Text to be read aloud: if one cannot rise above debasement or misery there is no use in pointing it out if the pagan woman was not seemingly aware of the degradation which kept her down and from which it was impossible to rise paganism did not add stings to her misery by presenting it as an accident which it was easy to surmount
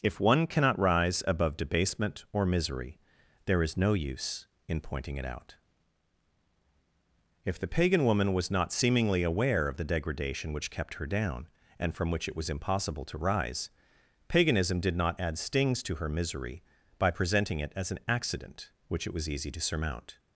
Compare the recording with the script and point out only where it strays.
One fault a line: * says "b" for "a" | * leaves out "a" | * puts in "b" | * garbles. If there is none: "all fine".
all fine